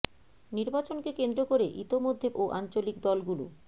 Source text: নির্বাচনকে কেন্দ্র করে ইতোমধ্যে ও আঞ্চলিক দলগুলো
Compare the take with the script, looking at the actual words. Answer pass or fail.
pass